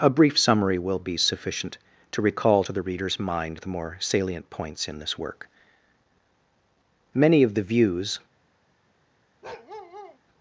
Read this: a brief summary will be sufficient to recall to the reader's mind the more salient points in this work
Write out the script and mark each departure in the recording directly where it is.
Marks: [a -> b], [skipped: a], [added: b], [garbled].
a brief summary will be sufficient to recall to the reader's mind the more salient points in this work [added: many of the views]